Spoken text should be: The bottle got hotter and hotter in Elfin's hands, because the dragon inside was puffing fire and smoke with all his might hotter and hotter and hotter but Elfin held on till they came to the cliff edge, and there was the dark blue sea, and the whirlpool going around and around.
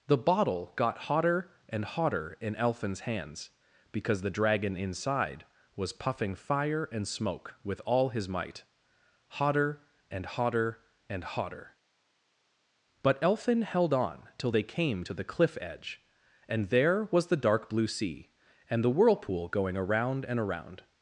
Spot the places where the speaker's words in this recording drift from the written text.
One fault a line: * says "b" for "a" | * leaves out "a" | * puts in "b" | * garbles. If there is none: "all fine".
all fine